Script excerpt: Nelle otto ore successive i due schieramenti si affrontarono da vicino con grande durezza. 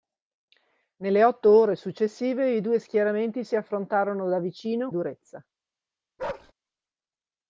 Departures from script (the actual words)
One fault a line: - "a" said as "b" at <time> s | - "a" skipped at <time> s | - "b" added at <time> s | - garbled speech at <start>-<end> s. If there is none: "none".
- "con grande" skipped at 4.9 s